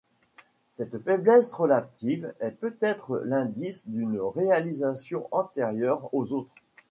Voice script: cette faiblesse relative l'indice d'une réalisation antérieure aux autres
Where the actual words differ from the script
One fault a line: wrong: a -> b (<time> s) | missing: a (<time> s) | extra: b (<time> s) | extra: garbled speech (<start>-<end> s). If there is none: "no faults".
extra: est peut être (2.4 s)